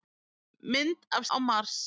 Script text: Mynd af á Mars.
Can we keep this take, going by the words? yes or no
yes